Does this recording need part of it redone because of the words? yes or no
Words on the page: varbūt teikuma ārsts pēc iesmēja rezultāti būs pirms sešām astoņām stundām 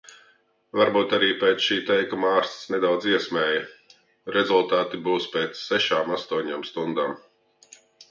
yes